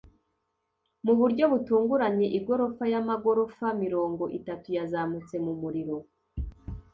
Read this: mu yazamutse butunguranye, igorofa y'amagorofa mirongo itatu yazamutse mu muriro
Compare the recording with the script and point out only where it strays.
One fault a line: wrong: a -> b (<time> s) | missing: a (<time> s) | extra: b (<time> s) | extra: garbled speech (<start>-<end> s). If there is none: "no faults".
wrong: yazamutse -> buryo (1.2 s)